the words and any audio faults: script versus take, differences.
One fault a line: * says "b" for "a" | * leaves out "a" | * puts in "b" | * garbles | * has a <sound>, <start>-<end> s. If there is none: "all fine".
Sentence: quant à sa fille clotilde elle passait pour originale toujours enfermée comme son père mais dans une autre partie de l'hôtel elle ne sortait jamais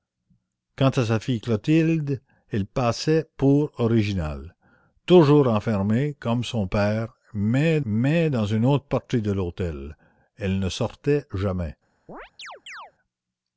* puts in "mais"
* has a chirp, 12.1-12.9 s